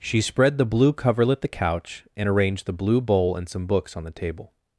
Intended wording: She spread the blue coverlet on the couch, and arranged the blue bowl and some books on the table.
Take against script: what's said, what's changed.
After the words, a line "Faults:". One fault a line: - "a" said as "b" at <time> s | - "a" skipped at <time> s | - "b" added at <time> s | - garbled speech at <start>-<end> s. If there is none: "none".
She spread the blue coverlet the couch, and arranged the blue bowl and some books on the table.
Faults:
- "on" skipped at 1.4 s